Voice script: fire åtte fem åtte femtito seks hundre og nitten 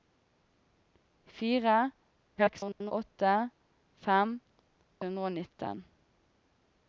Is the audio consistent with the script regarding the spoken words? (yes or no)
no